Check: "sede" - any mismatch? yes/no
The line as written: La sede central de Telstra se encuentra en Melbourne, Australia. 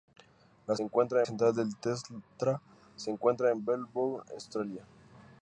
yes